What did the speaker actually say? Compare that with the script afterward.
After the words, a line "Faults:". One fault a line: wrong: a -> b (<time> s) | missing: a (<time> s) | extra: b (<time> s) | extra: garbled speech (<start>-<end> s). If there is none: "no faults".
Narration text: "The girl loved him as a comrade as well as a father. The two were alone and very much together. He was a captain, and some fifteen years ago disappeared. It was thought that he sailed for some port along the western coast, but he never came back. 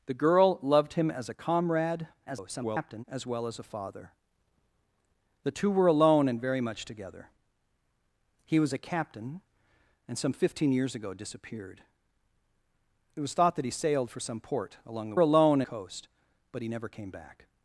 "The girl loved him as a comrade [garbled] as well as a father. The two were alone and very much together. He was a captain, and some fifteen years ago disappeared. It was thought that he sailed for some port along the alone coast, but he never came back.
Faults:
extra: garbled speech (2.3-3.0 s)
wrong: western -> alone (15.2 s)